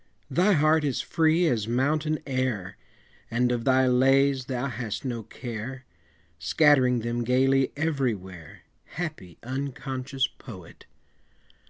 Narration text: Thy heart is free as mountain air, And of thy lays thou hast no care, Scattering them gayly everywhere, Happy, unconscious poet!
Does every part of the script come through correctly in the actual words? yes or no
yes